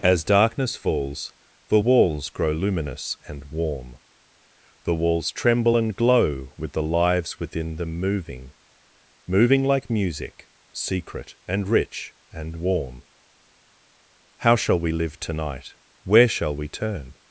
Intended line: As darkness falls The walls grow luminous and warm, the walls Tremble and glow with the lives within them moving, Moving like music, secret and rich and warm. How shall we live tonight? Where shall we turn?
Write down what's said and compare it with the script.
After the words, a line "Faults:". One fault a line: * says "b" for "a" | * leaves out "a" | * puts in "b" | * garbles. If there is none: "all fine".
As darkness falls The walls grow luminous and warm, the walls Tremble and glow with the lives within them moving, Moving like music, secret and rich and warm. How shall we live tonight? Where shall we turn?
Faults:
all fine